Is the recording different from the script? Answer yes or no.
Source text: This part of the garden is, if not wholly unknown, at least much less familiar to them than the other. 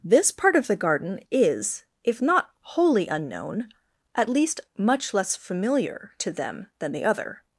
no